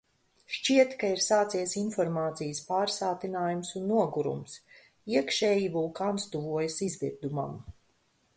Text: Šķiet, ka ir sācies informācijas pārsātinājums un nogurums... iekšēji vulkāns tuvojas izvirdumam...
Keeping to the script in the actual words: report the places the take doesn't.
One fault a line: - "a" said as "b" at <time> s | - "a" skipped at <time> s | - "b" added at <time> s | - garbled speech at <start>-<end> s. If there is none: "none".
none